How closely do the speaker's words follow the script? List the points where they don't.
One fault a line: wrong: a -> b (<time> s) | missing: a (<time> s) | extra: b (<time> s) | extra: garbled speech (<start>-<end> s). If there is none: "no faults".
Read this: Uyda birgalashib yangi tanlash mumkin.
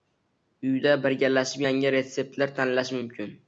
extra: retseptlar (2.0 s)